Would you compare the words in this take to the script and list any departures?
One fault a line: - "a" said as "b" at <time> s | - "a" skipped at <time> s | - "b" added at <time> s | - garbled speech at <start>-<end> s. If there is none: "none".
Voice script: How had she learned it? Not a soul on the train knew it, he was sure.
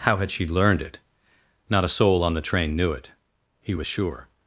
none